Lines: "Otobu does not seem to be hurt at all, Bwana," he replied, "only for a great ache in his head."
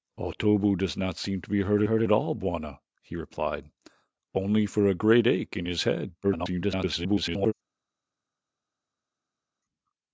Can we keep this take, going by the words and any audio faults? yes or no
no